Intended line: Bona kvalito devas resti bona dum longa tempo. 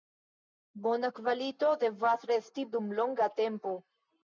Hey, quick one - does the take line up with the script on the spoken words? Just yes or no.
no